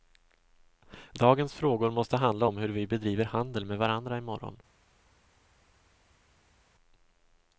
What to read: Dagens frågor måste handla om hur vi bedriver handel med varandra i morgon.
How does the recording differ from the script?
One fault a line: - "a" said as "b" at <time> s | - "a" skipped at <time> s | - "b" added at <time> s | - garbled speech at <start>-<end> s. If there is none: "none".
none